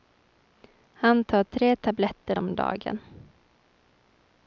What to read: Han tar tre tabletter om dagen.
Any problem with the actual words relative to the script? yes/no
no